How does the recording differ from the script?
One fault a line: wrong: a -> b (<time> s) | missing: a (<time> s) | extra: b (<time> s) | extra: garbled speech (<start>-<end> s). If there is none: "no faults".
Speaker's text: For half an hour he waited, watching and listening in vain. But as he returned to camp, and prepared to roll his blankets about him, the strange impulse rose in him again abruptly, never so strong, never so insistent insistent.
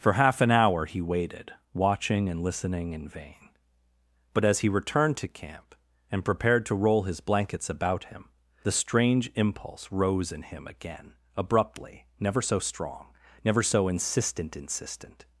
no faults